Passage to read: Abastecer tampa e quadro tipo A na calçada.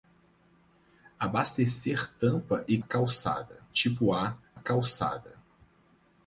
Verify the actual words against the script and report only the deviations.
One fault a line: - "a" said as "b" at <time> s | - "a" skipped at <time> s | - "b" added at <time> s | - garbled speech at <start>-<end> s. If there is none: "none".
- "quadro" said as "calçada" at 2.8 s
- "na" skipped at 4.4 s